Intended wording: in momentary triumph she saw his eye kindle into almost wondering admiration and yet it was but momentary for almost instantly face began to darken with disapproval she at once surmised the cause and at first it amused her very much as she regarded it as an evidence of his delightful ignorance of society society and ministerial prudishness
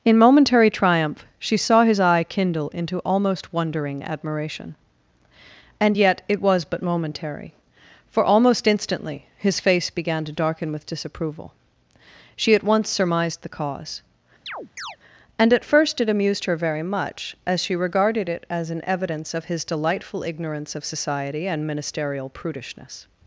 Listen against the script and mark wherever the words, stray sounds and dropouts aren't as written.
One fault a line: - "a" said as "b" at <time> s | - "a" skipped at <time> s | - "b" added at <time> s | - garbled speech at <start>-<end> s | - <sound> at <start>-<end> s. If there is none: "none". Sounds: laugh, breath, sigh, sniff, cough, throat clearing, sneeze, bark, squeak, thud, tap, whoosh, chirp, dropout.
- "his" added at 9.4 s
- chirp at 14.5-15.0 s
- "society" skipped at 21.4 s